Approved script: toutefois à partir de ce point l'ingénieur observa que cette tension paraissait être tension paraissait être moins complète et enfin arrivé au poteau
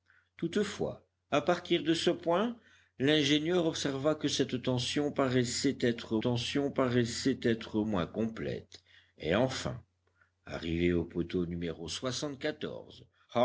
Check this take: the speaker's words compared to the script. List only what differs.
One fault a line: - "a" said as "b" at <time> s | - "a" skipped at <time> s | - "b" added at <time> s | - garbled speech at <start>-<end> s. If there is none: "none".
none